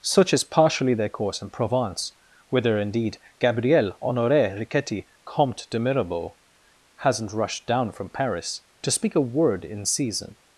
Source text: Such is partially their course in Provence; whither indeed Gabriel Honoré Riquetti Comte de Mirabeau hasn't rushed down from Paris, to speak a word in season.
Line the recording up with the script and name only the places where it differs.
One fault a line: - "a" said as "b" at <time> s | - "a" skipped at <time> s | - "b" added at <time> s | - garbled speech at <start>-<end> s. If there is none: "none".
none